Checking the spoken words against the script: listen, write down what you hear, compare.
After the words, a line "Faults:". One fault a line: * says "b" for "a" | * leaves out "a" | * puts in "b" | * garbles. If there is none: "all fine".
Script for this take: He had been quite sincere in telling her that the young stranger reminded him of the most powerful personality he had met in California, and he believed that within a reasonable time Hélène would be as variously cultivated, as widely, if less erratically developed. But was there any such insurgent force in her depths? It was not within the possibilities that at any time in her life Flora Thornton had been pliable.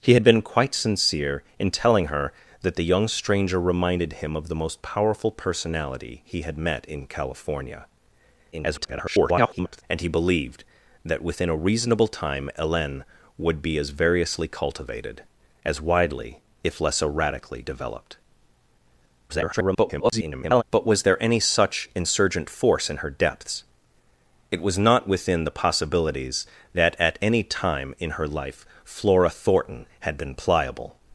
He had been quite sincere in telling her that the young stranger reminded him of the most powerful personality he had met in California, [garbled] and he believed that within a reasonable time Hélène would be as variously cultivated, as widely, if less erratically developed. [garbled] But was there any such insurgent force in her depths? It was not within the possibilities that at any time in her life Flora Thornton had been pliable.
Faults:
* garbles
* garbles